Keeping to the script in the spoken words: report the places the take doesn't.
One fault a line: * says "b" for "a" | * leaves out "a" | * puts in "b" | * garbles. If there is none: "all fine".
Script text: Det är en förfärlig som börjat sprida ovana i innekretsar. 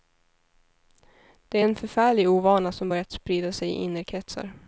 * puts in "ovana"
* says "sig" for "ovana"